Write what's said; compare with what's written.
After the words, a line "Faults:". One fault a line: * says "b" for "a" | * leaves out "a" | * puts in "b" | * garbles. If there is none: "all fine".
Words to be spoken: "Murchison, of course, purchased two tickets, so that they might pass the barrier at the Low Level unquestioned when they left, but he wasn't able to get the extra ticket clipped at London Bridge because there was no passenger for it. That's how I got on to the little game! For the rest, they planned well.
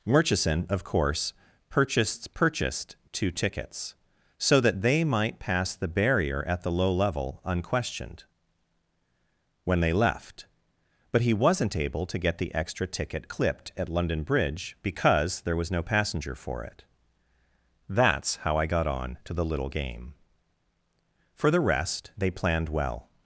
"Murchison, of course, purchased purchased two tickets, so that they might pass the barrier at the Low Level unquestioned when they left, but he wasn't able to get the extra ticket clipped at London Bridge because there was no passenger for it. That's how I got on to the little game! For the rest, they planned well.
Faults:
* puts in "purchased"